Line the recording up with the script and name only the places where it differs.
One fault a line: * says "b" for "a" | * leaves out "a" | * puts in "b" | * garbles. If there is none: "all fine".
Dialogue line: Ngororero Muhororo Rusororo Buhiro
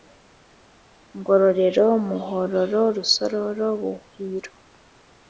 all fine